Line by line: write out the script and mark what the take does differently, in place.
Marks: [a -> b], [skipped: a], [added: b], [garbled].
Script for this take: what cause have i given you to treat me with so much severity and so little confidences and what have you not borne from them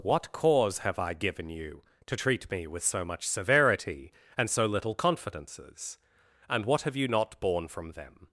what cause have i given you to treat me with so much severity and so little confidences and what have you not borne from them